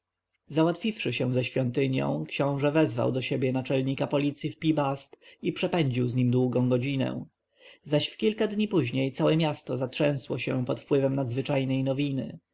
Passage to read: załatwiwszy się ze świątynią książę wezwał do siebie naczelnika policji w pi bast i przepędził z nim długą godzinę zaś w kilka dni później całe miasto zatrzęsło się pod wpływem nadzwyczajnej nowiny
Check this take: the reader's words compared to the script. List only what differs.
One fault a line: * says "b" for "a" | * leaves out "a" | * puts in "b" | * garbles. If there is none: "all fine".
all fine